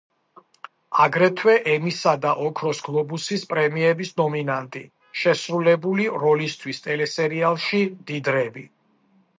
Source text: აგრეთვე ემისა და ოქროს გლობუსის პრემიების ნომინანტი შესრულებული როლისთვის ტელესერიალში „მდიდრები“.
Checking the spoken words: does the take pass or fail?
pass